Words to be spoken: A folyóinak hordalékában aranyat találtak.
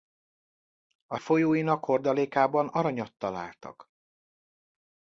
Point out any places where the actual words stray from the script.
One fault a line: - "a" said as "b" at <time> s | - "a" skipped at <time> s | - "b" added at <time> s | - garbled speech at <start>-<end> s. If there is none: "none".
none